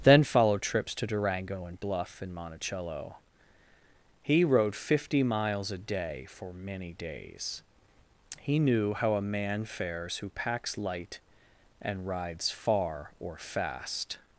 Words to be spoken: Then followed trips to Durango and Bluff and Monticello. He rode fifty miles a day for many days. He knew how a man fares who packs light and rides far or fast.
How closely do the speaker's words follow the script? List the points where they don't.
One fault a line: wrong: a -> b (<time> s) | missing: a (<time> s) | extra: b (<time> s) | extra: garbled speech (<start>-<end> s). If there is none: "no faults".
no faults